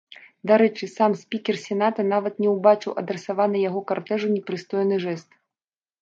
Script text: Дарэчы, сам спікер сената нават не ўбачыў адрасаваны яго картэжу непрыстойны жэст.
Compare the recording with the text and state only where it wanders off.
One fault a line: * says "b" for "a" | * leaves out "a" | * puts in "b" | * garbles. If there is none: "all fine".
all fine